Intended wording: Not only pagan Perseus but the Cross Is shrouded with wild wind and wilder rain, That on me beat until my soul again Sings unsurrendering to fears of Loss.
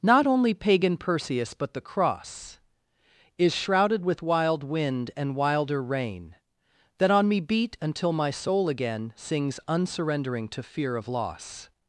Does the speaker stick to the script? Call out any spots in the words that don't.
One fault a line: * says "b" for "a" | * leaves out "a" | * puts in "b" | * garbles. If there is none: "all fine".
* says "fear" for "fears"